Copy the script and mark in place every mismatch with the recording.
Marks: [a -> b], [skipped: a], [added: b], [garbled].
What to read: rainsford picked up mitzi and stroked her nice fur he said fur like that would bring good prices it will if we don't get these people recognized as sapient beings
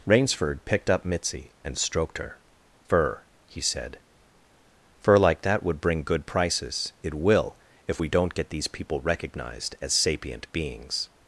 rainsford picked up mitzi and stroked her [skipped: nice] fur he said fur like that would bring good prices it will if we don't get these people recognized as sapient beings